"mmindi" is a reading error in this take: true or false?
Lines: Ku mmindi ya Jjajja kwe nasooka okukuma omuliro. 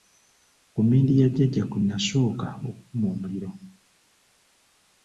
false